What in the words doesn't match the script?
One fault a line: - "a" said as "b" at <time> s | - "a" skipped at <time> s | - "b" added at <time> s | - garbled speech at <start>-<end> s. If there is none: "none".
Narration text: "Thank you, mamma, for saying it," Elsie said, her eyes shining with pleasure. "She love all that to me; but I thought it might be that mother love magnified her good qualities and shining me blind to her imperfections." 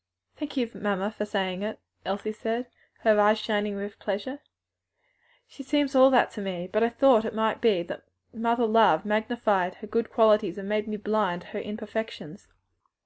- "love" said as "seems" at 5.6 s
- "shining" said as "made" at 10.7 s